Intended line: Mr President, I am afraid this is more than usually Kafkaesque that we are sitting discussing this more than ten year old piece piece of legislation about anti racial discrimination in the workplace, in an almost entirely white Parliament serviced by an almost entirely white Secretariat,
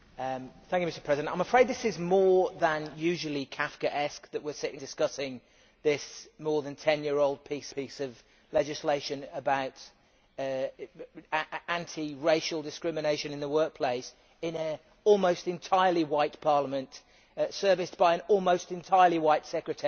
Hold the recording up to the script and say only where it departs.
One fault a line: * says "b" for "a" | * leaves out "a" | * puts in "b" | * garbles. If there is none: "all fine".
all fine